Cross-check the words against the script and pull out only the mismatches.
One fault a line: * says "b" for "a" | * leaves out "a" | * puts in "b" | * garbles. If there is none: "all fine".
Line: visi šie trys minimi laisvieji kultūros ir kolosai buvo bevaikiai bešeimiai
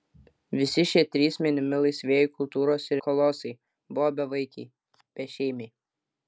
all fine